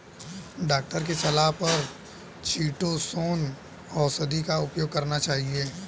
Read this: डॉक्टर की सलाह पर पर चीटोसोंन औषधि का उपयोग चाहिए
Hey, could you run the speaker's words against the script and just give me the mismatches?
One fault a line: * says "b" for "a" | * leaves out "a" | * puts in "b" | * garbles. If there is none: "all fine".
* leaves out "पर"
* puts in "करना"